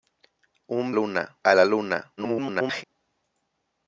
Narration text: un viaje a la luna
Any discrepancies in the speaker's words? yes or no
yes